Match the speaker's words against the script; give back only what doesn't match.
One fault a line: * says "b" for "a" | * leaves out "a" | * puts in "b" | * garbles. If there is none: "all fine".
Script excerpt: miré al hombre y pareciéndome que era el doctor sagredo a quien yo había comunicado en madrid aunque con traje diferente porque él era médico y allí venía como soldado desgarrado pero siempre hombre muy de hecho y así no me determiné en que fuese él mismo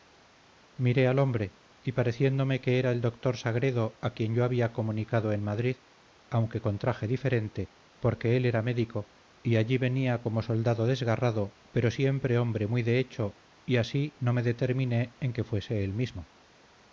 all fine